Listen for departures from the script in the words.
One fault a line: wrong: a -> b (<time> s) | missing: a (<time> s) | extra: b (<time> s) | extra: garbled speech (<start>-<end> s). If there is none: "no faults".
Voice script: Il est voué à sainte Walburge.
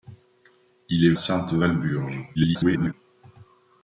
missing: voué à (1.1 s)
extra: garbled speech (2.3-2.9 s)